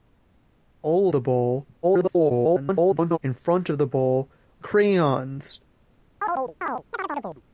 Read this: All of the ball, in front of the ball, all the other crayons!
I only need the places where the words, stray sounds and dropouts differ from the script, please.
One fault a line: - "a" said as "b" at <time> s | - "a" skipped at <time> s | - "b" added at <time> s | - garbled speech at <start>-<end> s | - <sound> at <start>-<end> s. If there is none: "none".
- "of" skipped at 1.1 s
- garbled speech at 1.8-3.2 s
- "all the other" skipped at 4.3 s
- chirp at 6.2-7.4 s